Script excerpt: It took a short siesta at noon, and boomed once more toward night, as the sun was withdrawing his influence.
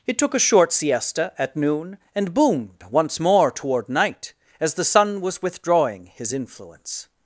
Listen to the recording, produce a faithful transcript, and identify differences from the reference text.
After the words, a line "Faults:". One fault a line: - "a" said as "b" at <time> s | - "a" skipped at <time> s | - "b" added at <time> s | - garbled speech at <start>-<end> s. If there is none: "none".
It took a short siesta at noon, and boomed once more toward night, as the sun was withdrawing his influence.
Faults:
none